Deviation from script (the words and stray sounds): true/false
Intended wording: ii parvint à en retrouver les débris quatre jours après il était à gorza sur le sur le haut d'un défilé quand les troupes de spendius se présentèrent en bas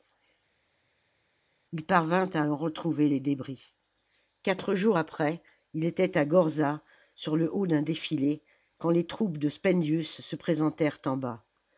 true